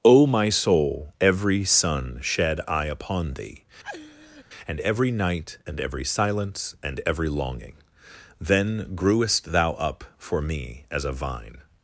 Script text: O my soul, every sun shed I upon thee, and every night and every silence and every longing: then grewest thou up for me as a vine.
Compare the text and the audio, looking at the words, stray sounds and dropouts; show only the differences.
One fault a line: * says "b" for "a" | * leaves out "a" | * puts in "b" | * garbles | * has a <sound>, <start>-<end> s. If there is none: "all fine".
* has a laugh, 3.8-4.4 s